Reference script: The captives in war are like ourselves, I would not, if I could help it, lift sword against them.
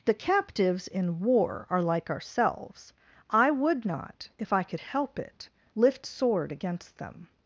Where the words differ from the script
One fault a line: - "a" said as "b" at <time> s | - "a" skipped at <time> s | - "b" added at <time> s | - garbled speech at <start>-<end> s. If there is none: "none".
none